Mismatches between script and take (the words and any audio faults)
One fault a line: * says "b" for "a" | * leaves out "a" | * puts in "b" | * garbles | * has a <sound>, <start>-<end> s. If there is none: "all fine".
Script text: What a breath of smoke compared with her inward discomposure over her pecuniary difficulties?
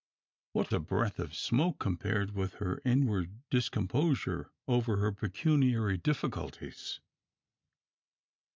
all fine